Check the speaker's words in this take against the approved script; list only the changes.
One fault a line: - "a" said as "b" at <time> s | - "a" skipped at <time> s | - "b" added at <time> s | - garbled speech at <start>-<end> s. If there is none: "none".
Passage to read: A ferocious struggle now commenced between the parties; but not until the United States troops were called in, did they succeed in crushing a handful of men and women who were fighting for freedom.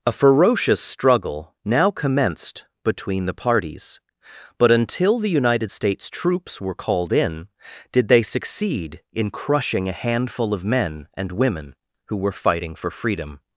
- "not" skipped at 4.7 s